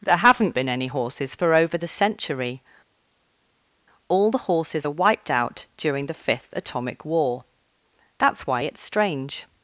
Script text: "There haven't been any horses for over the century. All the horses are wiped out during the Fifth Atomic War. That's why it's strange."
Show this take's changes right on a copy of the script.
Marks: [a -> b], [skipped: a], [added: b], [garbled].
"There haven't been any horses for over the century. All the horses are wiped out during the Fifth Atomic War. That's why it's strange."